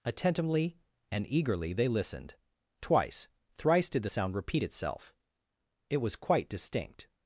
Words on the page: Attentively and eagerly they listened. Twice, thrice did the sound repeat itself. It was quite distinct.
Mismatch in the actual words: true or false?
false